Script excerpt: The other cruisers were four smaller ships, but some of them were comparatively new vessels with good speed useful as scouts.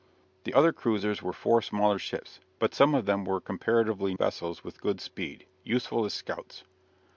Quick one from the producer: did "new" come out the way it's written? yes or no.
no